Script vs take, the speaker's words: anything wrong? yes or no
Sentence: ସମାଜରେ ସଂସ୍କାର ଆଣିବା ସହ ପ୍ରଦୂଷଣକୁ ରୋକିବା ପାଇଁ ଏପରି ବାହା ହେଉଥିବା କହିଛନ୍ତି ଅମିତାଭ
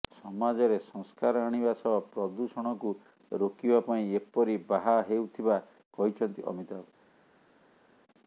no